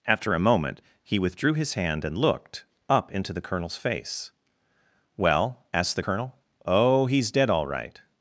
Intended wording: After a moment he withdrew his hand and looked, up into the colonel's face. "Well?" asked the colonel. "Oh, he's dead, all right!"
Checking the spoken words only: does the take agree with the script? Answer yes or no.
yes